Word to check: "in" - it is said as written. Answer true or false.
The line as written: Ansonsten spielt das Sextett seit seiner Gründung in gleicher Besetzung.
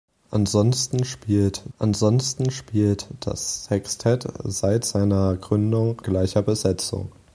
false